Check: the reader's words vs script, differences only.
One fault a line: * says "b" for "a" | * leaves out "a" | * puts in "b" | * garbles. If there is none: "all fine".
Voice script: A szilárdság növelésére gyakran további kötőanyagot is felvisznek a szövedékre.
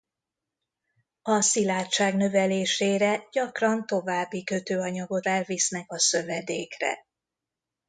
* leaves out "is"